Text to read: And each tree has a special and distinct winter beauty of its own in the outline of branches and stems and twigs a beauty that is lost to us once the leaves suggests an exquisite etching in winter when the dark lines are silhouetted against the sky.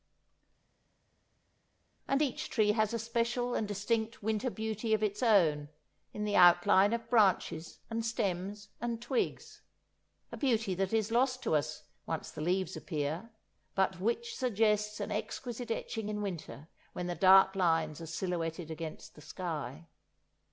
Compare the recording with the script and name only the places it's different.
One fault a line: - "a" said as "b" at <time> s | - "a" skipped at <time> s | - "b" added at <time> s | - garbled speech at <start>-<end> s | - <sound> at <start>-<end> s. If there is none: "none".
- "appear but which" added at 12.8 s